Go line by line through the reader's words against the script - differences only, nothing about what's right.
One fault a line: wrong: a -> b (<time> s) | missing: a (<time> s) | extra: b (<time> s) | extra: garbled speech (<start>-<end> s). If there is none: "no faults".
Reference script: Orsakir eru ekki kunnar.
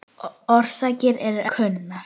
missing: ekki (1.4 s)